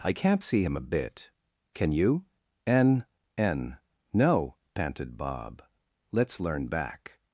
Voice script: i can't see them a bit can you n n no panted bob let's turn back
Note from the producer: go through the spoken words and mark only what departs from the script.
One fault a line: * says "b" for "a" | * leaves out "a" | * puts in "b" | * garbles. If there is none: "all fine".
* says "him" for "them"
* says "learn" for "turn"